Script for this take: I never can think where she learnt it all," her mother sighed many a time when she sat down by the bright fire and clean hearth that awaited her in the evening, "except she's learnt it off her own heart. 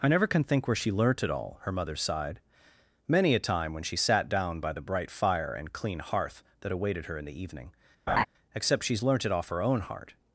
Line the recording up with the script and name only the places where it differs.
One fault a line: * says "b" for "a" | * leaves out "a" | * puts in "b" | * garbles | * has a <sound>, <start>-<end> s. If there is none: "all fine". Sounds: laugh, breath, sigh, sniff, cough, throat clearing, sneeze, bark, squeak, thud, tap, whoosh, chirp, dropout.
* has a laugh, 8.1-8.3 s